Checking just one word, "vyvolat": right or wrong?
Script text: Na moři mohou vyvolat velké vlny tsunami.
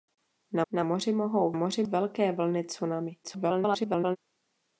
wrong